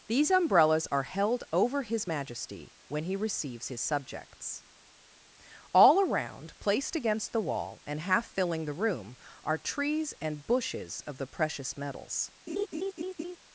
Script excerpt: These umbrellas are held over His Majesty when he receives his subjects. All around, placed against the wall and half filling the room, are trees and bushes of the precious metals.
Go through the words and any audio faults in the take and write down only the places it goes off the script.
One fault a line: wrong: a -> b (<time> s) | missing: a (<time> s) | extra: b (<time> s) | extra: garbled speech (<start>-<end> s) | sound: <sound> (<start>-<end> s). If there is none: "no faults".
sound: laugh (12.5-13.4 s)